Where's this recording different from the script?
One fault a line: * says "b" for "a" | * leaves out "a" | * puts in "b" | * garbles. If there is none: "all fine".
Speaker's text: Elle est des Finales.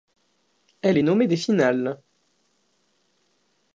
* puts in "nommée"